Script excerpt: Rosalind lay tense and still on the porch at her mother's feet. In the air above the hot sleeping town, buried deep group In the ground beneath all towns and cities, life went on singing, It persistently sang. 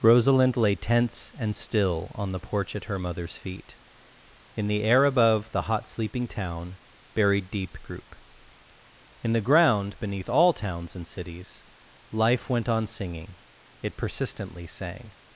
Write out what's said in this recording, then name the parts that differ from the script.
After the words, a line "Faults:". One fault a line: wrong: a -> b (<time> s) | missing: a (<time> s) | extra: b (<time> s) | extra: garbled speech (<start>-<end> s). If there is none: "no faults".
Rosalind lay tense and still on the porch at her mother's feet. In the air above the hot sleeping town, buried deep group In the ground beneath all towns and cities, life went on singing, It persistently sang.
Faults:
no faults